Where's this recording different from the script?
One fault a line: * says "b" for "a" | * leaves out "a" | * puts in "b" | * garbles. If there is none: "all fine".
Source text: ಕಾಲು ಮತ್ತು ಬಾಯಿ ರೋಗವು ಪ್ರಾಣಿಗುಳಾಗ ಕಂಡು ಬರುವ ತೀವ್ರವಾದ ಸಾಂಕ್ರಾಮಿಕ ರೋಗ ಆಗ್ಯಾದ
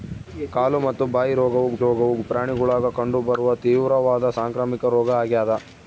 * puts in "ರೋಗವು"